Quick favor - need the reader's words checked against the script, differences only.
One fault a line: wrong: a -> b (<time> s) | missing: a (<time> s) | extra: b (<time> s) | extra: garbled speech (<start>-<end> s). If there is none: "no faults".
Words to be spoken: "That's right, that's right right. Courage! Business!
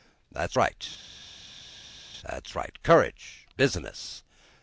missing: right (2.8 s)